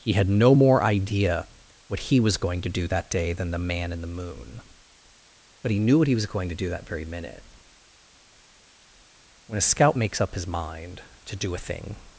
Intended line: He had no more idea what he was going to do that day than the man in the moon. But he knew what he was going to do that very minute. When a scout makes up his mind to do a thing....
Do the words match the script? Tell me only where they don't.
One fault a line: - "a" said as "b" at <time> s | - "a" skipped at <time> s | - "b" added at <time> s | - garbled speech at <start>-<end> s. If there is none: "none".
none